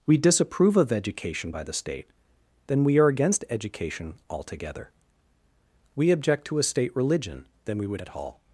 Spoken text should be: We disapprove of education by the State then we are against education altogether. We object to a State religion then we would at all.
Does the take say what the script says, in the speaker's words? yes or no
yes